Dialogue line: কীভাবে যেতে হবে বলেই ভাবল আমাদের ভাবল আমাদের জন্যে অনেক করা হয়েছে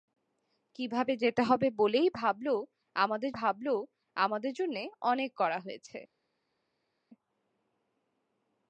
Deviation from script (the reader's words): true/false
false